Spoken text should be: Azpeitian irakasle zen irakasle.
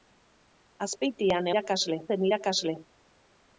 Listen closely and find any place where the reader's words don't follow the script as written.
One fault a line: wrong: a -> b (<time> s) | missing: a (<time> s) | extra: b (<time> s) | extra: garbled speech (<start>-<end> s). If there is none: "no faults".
no faults